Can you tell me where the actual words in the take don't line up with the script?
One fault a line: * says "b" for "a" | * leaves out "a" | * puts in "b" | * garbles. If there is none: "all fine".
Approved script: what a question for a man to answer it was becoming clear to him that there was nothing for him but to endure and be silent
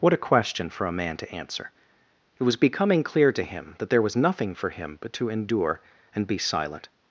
all fine